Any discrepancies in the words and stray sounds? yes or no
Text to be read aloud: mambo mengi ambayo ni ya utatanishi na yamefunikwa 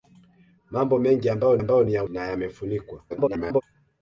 yes